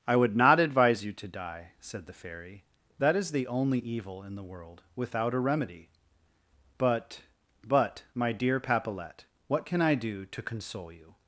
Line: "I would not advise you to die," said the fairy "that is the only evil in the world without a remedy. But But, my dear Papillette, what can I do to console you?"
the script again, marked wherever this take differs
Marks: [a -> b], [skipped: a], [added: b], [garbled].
"I would not advise you to die," said the fairy "that is the only evil in the world without a remedy. But But, my dear Papillette, what can I do to console you?"